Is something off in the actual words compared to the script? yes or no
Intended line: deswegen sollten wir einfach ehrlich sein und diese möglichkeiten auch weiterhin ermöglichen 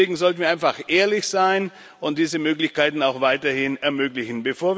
no